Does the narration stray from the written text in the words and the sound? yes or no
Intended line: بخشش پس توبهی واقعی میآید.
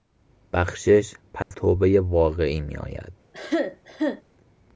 yes